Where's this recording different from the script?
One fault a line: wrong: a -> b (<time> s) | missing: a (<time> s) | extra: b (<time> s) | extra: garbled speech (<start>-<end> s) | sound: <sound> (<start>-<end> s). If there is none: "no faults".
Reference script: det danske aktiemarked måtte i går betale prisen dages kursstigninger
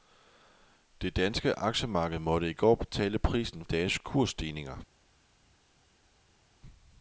no faults